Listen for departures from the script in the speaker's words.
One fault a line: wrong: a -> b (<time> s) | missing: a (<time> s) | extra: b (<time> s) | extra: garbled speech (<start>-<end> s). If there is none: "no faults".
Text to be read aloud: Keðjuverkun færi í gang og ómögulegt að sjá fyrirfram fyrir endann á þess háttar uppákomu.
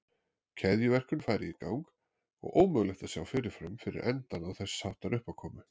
no faults